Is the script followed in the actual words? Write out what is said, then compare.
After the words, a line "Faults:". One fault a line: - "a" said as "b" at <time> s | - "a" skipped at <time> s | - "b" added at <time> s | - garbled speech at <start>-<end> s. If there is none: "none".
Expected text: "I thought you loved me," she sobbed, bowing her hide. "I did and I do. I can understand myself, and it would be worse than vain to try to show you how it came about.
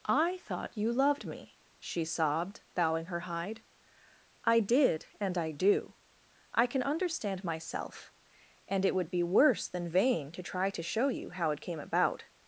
"I thought you loved me," she sobbed, bowing her hide. "I did and I do. I can understand myself, and it would be worse than vain to try to show you how it came about.
Faults:
none